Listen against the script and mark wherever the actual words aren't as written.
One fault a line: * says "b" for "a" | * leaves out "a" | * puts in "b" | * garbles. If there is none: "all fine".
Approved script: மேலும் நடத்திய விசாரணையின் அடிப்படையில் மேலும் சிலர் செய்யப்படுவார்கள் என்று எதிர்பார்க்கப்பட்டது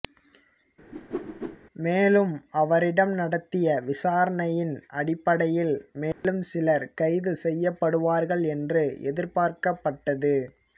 * puts in "அவரிடம்"
* puts in "கைது"